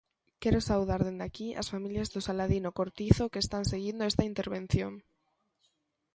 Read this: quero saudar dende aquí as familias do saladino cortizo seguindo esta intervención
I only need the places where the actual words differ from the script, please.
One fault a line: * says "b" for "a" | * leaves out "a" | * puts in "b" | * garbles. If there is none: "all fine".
* puts in "que están"